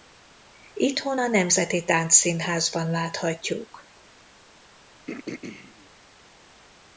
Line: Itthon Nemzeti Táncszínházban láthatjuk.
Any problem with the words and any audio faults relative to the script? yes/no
yes